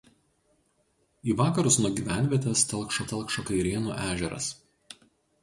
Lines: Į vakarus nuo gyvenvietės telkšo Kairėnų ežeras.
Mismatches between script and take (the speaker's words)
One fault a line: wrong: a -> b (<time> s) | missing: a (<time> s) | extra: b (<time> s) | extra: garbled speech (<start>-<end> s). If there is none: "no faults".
extra: telkšo (3.1 s)